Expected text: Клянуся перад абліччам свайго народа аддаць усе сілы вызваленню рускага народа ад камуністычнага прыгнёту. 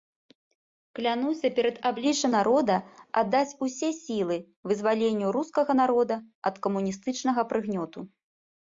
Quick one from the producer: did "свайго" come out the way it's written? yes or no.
no